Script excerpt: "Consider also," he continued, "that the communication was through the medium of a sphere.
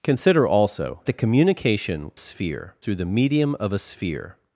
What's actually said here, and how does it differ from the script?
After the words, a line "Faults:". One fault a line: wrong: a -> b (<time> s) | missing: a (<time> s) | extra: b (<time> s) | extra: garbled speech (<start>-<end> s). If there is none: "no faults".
"Consider also," the communication sphere through the medium of a sphere.
Faults:
missing: he continued that (1.0 s)
wrong: was -> sphere (2.2 s)